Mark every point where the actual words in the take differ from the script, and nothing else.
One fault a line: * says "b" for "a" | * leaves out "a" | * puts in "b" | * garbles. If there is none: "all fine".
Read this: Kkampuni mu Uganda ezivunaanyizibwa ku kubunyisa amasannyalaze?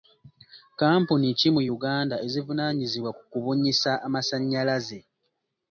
* puts in "ki"